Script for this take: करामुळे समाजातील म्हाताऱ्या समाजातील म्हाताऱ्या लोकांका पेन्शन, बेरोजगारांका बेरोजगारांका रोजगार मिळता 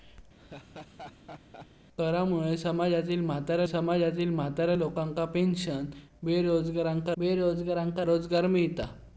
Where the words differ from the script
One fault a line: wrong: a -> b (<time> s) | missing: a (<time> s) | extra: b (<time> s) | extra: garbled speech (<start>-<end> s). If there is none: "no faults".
no faults